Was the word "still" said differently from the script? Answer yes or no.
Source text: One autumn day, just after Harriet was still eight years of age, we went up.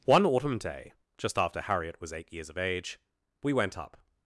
yes